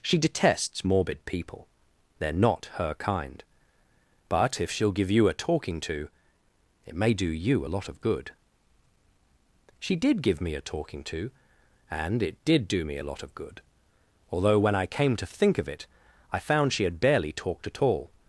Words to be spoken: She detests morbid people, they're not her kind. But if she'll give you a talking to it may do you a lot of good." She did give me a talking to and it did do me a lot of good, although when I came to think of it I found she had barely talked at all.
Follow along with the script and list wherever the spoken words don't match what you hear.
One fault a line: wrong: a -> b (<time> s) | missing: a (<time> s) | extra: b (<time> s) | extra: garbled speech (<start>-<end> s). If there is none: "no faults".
no faults